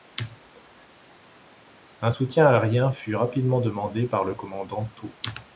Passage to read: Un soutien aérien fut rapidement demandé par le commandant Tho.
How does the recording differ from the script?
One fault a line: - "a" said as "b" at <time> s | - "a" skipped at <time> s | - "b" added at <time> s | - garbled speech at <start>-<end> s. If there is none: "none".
none